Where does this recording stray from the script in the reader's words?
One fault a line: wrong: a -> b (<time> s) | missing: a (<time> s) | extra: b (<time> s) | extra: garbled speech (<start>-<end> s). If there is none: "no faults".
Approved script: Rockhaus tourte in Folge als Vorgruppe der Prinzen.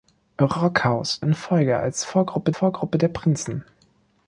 missing: tourte (1.2 s)
extra: Vorgruppe (2.5 s)